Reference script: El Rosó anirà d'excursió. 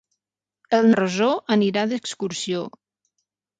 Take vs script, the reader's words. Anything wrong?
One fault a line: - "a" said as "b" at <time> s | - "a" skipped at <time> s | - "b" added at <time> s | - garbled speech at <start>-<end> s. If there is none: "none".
none